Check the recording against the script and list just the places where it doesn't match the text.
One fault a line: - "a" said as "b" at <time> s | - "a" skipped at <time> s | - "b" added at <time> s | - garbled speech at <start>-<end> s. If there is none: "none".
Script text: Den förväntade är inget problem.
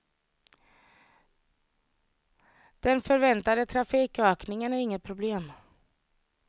- "trafikökningen" added at 3.6 s